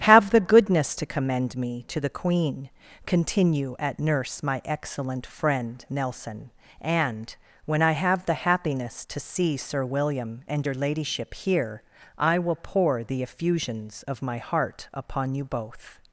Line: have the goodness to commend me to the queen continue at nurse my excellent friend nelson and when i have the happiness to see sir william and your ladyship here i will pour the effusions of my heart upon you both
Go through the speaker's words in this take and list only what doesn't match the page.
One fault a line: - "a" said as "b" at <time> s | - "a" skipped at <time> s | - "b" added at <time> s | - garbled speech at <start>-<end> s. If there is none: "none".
none